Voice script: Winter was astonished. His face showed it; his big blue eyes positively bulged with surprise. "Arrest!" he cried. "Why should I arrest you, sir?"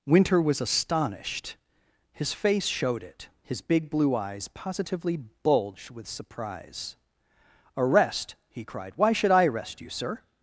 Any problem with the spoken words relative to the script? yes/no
no